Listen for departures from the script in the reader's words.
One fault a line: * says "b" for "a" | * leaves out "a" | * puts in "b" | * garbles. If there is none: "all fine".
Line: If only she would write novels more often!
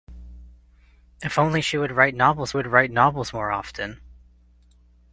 * puts in "would write novels"